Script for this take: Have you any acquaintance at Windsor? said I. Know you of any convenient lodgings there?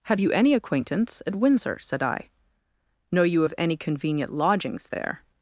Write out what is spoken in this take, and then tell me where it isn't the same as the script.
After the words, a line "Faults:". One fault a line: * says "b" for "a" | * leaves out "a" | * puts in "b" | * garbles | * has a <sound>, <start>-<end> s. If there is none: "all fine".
Have you any acquaintance at Windsor? said I. Know you of any convenient lodgings there?
Faults:
all fine